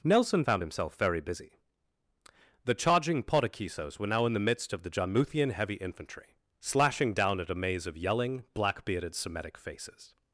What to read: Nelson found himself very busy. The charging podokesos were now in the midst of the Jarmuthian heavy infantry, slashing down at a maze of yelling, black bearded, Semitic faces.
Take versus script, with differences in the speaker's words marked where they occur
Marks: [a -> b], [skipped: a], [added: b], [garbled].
Nelson found himself very busy. The charging podokesos were now in the midst of the Jarmuthian heavy infantry, slashing down at a maze of yelling, black bearded, Semitic faces.